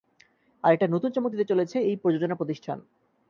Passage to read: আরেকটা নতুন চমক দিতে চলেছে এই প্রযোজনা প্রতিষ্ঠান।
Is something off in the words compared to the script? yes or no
no